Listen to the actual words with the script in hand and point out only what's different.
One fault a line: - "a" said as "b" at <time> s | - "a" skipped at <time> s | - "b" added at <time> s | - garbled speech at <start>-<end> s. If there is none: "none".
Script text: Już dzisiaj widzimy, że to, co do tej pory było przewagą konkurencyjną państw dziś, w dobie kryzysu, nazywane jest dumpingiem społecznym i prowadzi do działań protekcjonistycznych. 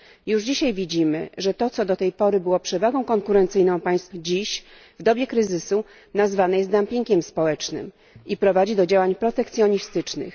none